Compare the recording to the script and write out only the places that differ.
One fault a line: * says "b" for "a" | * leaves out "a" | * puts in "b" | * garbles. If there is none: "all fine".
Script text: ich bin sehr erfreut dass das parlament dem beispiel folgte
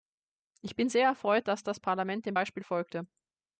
all fine